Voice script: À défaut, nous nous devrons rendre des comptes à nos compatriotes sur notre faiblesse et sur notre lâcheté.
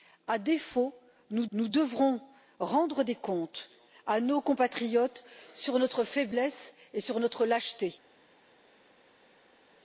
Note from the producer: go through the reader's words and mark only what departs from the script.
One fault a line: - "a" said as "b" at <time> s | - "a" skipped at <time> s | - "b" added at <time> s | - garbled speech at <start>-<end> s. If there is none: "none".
none